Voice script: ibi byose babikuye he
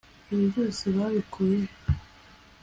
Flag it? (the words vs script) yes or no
no